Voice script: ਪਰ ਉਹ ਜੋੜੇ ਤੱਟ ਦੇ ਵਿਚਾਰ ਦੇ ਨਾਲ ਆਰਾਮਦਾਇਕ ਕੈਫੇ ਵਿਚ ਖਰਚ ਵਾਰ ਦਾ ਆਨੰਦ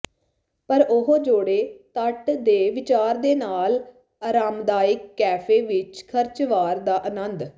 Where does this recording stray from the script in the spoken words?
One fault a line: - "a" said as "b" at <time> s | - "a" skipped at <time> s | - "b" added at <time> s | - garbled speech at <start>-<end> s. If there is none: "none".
none